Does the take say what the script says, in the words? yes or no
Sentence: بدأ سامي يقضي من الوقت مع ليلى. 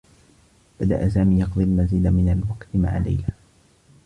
no